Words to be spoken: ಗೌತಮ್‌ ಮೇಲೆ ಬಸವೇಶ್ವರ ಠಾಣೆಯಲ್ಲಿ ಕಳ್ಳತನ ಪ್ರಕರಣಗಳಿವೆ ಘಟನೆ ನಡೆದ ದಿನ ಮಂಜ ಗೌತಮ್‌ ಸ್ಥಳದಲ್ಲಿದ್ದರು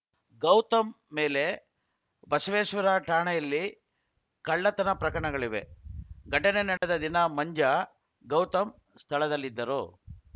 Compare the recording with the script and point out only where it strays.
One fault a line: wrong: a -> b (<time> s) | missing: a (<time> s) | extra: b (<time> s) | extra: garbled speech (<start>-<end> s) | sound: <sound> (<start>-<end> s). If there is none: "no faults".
sound: dropout (6.8-6.8 s)